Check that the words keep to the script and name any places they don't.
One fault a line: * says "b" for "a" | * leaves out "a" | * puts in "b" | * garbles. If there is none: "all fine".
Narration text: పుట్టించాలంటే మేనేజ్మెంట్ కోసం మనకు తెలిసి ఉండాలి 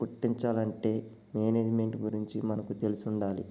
* says "గురించి" for "కోసం"